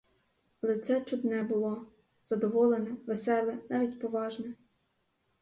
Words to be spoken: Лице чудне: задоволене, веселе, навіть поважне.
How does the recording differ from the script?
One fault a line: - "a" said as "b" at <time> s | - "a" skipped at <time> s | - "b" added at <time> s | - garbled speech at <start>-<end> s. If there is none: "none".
- "було" added at 1.4 s